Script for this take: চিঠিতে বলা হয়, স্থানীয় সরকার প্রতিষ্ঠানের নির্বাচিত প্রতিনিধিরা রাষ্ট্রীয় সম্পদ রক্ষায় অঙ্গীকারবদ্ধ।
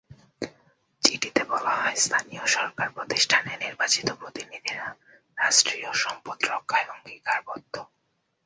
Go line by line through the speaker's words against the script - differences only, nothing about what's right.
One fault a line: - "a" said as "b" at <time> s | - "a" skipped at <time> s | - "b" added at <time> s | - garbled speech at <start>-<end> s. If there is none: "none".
none